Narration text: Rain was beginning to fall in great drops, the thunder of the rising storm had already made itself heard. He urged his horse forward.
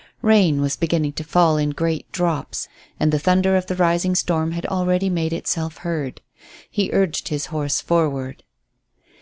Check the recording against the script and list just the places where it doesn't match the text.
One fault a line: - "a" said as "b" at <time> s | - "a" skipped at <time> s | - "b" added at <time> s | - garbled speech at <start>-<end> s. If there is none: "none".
- "and" added at 3.0 s